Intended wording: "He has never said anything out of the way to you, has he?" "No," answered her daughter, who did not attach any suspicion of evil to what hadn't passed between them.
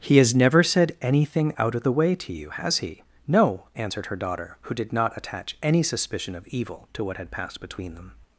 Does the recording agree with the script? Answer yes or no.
no